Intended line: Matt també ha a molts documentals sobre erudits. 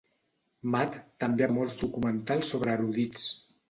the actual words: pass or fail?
pass